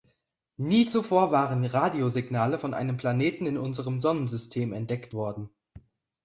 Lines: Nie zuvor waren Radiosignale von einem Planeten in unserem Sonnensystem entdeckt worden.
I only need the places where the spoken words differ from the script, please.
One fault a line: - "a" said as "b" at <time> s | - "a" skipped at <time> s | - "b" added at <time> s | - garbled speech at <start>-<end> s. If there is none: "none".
none